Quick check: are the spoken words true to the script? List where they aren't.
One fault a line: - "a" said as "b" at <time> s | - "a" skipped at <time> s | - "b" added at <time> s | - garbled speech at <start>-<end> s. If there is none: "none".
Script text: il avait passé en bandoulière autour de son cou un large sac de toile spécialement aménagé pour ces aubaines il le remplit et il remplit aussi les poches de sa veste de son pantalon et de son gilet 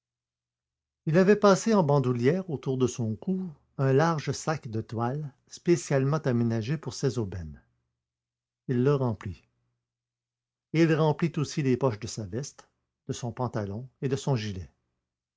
none